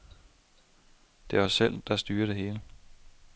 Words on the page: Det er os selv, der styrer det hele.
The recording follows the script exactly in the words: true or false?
true